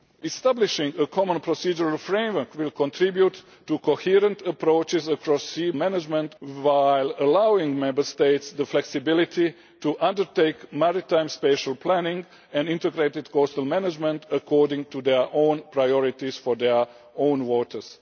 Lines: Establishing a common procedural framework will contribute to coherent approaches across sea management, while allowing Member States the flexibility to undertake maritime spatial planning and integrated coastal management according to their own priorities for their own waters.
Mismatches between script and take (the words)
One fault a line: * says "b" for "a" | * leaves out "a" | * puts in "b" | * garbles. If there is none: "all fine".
all fine